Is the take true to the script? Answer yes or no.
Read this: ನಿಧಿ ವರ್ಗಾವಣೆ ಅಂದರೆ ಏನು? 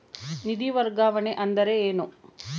yes